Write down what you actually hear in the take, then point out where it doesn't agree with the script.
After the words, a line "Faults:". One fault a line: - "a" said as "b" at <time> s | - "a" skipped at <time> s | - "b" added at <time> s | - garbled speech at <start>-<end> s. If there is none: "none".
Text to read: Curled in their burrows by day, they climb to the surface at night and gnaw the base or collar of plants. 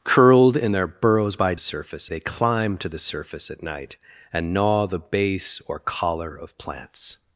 Curled in their burrows by surface, they climb to the surface at night and gnaw the base or collar of plants.
Faults:
- "day" said as "surface" at 1.6 s